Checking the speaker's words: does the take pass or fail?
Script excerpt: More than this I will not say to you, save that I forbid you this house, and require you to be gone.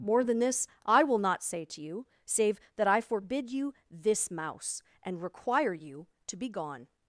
fail